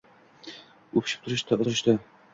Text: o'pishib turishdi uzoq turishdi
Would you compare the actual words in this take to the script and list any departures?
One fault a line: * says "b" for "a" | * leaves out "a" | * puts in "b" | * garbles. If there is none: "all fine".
* leaves out "uzoq"